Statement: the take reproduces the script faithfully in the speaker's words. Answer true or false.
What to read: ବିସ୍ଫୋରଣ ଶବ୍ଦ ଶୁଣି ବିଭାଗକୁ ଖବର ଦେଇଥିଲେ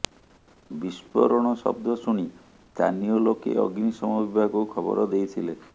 false